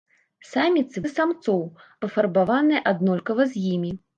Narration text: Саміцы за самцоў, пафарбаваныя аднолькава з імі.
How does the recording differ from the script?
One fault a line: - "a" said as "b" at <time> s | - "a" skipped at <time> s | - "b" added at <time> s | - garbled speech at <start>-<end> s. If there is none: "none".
none